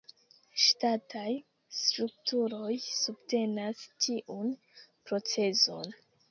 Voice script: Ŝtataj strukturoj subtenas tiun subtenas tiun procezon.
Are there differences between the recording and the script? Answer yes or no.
yes